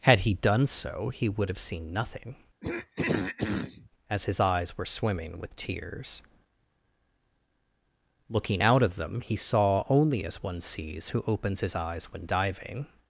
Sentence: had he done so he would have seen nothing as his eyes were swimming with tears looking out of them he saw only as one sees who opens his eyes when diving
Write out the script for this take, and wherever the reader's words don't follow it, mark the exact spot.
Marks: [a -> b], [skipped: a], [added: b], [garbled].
had he done so he would have seen nothing as his eyes were swimming with tears looking out of them he saw only as one sees who opens his eyes when diving